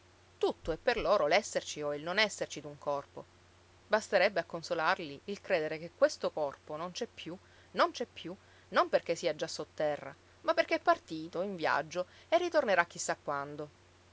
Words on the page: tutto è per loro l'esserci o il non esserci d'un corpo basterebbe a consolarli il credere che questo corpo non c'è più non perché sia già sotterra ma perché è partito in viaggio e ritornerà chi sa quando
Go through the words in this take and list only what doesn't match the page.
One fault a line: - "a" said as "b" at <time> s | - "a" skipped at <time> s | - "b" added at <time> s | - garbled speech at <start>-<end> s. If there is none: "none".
- "c'è più non" added at 7.9 s